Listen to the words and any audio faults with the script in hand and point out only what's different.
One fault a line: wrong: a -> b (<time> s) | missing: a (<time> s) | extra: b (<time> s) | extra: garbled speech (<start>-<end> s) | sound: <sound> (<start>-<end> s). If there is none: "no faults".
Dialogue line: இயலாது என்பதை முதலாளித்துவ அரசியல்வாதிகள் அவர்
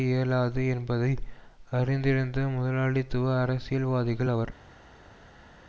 extra: அறிந்திருந்த (1.7 s)